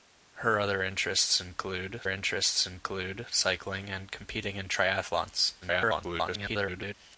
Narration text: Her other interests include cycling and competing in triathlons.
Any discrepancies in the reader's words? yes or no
yes